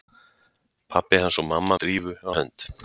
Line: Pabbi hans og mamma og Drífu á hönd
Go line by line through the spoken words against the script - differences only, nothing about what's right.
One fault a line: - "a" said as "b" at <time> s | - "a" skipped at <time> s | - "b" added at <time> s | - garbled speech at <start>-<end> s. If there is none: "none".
none